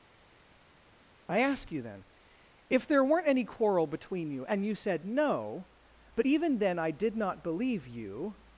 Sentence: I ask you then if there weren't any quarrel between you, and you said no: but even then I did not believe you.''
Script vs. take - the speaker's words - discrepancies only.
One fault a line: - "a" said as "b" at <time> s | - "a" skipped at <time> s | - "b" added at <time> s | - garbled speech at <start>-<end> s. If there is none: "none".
none